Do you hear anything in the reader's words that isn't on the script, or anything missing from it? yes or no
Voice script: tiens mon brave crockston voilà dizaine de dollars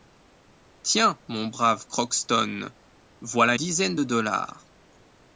no